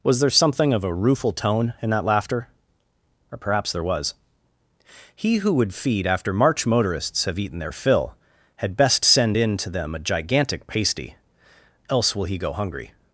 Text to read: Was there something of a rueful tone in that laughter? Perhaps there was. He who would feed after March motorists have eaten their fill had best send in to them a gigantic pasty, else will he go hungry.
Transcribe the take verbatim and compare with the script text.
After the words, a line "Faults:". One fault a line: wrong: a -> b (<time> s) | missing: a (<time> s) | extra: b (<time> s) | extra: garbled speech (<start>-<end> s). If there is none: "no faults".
Was there something of a rueful tone in that laughter? or Perhaps there was. He who would feed after March motorists have eaten their fill had best send in to them a gigantic pasty, else will he go hungry.
Faults:
extra: or (3.3 s)